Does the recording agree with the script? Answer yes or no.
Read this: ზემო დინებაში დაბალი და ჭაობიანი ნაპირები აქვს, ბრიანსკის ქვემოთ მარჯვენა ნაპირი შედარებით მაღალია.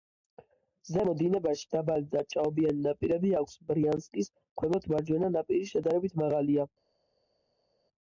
yes